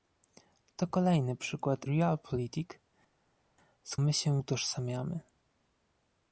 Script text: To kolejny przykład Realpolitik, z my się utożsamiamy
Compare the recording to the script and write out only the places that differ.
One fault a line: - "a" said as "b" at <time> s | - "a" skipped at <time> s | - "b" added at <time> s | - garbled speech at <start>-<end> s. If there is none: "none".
none